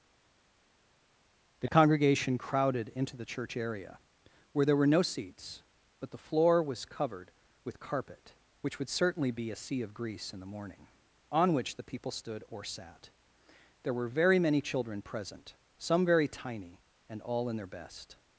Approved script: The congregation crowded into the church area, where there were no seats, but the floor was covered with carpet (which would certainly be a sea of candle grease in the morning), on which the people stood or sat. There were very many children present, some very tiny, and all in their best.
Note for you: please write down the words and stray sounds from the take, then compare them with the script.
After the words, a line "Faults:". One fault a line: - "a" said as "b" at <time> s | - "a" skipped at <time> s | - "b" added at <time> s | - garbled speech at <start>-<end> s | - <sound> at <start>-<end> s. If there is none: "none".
The congregation crowded into the church area, where there were no seats, but the floor was covered with carpet (which would certainly be a sea of grease in the morning), on which the people stood or sat. There were very many children present, some very tiny, and all in their best.
Faults:
- "candle" skipped at 9.9 s